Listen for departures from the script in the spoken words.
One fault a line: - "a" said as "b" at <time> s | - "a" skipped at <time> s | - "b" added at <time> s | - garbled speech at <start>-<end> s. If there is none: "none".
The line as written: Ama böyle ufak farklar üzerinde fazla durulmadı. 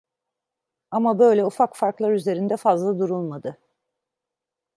none